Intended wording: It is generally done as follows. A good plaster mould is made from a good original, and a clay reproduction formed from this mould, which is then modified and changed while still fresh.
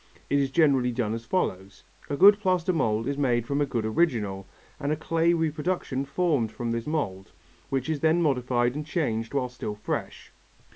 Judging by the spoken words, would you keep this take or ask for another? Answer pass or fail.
pass